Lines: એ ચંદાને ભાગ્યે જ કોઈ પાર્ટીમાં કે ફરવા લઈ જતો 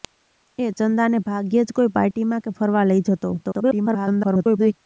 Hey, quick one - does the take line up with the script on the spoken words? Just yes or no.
no